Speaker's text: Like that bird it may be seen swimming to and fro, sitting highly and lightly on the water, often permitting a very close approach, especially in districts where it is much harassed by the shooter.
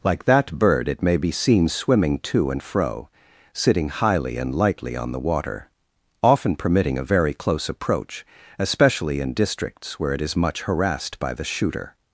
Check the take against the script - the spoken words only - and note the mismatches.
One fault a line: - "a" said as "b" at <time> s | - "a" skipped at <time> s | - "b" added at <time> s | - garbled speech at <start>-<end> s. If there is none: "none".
none